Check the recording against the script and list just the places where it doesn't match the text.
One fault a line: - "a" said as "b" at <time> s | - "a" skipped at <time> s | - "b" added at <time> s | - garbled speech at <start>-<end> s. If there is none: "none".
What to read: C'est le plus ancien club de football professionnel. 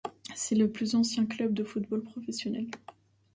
none